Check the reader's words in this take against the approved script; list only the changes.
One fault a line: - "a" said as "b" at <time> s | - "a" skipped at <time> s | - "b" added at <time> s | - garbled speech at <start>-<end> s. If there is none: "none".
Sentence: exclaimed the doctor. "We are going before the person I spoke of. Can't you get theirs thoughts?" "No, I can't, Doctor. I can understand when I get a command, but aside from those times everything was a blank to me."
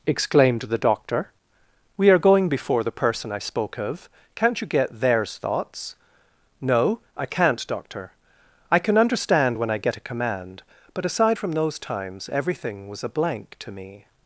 none